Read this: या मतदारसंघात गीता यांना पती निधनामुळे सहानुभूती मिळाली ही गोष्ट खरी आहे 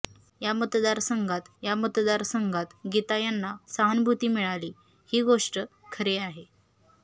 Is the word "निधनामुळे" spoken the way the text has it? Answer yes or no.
no